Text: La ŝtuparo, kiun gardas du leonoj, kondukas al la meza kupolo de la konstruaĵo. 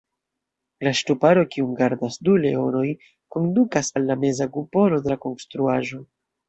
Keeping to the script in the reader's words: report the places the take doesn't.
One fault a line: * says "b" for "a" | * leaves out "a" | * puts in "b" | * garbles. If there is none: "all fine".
all fine